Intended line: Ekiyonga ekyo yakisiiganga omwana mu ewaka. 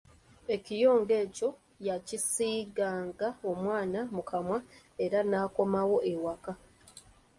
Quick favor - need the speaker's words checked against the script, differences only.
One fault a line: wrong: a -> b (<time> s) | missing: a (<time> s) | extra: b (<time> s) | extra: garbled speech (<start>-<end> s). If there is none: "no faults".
extra: kamwa era n'akomawo (4.3 s)